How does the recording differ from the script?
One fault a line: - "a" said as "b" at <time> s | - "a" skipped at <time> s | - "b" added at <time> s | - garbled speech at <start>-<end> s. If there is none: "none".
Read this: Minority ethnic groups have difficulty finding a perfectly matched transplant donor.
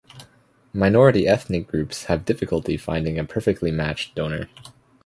- "transplant" skipped at 4.2 s